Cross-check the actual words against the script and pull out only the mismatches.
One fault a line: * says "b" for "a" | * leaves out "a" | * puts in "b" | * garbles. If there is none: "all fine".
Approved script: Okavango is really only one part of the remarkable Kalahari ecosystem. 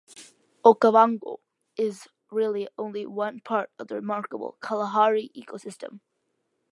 all fine